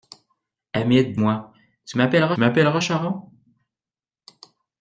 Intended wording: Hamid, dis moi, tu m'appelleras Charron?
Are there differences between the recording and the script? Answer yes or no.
yes